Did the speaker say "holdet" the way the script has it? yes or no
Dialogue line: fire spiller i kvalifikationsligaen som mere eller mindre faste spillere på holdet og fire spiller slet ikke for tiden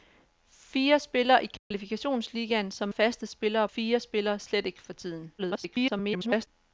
no